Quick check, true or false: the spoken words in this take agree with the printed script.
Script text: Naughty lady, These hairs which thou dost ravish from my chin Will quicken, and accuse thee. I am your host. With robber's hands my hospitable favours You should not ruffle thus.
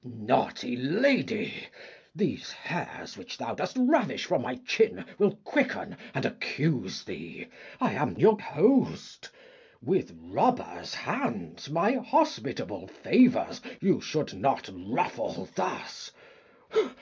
true